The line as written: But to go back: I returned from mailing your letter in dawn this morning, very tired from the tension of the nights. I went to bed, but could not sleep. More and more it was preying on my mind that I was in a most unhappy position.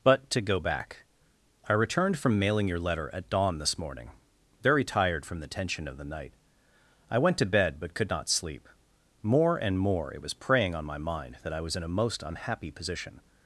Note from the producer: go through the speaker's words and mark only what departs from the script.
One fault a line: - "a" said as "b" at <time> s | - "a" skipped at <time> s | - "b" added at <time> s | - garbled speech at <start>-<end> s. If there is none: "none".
- "in" said as "at" at 3.1 s
- "nights" said as "night" at 6.0 s